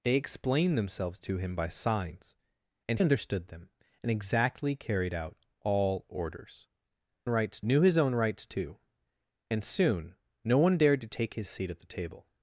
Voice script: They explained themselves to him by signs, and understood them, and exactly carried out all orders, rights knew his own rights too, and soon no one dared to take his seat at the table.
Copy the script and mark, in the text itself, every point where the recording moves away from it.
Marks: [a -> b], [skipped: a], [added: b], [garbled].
They explained themselves to him by signs, and understood them, and exactly carried out all orders, rights knew his own rights too, and soon no one dared to take his seat at the table.